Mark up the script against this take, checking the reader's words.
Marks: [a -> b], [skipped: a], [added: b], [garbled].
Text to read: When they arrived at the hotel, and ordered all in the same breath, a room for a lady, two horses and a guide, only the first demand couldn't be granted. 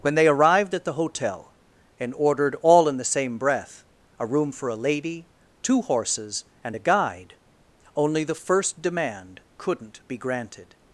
When they arrived at the hotel, and ordered all in the same breath, a room for a lady, two horses and a guide, only the first demand couldn't be granted.